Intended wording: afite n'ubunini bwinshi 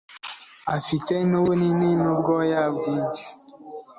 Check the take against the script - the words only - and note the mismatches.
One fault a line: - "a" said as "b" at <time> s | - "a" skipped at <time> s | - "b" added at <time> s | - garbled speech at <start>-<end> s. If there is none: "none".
- "n'ubwoya" added at 2.0 s